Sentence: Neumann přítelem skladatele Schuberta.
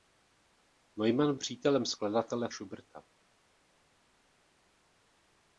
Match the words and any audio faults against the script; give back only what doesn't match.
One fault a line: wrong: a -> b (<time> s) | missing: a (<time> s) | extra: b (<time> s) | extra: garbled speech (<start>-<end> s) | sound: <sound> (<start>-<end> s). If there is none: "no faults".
no faults